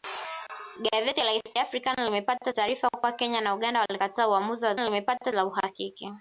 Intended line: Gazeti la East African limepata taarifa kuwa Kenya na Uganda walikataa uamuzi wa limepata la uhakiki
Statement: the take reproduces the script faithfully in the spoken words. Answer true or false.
true